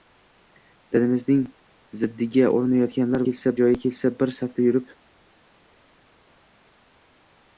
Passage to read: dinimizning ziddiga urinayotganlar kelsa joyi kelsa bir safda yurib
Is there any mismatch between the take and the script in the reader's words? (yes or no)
no